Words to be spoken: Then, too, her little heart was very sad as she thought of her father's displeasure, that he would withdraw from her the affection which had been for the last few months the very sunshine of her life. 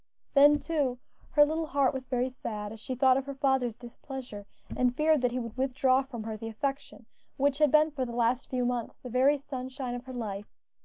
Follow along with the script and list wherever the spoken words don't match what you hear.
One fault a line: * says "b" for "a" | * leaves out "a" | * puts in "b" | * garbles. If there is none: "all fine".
* puts in "and feared"